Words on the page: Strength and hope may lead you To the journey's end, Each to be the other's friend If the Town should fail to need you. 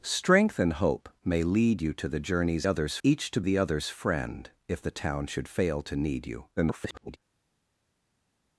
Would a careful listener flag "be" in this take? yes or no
yes